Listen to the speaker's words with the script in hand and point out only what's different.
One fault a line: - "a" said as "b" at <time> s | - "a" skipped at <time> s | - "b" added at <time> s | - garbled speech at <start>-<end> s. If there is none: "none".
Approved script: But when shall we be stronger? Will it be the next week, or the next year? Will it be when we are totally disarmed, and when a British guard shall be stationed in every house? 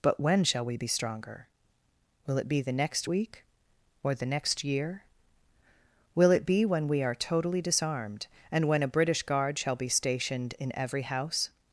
none